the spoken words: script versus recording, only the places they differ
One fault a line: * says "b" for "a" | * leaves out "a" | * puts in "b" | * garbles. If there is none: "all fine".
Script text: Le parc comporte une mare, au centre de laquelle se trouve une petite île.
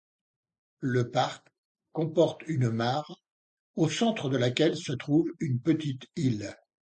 all fine